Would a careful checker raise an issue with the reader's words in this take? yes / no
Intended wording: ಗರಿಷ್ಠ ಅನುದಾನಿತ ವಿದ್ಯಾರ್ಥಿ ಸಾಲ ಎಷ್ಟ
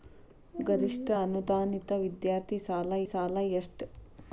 yes